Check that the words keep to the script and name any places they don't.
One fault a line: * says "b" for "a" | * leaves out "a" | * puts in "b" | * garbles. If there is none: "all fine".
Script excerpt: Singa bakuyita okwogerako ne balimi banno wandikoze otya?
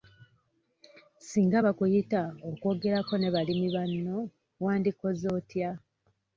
all fine